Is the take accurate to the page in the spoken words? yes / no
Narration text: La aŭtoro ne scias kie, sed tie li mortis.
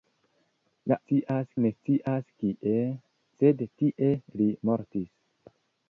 no